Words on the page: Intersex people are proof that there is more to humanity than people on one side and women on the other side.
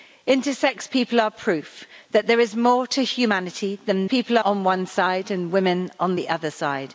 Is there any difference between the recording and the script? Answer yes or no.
no